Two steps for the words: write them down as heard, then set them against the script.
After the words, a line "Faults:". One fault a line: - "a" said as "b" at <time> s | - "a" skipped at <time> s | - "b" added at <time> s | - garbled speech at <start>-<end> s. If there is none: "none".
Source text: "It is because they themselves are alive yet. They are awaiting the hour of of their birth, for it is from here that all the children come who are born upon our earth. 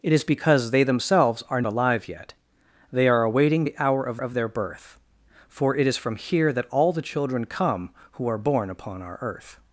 "It is because they themselves are alive yet. They are awaiting the hour of of their birth, for it is from here that all the children come who are born upon our earth.
Faults:
none